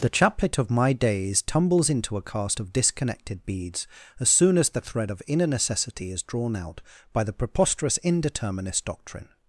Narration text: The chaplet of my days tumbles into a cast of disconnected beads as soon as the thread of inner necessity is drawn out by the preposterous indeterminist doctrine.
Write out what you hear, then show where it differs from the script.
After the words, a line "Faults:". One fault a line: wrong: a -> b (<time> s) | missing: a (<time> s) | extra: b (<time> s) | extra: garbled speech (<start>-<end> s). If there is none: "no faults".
The chaplet of my days tumbles into a cast of disconnected beads as soon as the thread of inner necessity is drawn out by the preposterous indeterminist doctrine.
Faults:
no faults